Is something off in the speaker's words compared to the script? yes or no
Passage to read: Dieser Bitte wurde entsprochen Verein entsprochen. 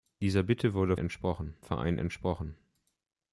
no